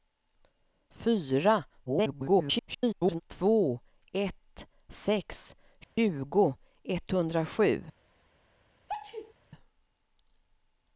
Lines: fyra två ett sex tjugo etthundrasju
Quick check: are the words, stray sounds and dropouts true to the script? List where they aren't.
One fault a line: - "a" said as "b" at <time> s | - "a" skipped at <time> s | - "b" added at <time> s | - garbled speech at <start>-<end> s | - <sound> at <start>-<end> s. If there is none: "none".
- garbled speech at 1.9-3.2 s
- dropout at 5.8-6.0 s
- sneeze at 8.9-9.3 s